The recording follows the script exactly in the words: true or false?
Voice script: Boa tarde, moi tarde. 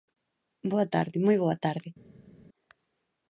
false